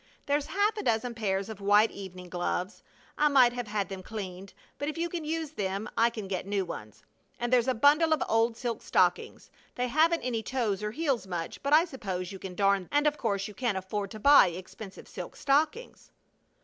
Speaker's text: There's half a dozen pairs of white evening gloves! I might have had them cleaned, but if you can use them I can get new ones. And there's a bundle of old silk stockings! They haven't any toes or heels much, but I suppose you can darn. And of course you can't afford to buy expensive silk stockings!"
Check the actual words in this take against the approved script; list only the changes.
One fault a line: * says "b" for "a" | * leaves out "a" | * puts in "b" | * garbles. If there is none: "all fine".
all fine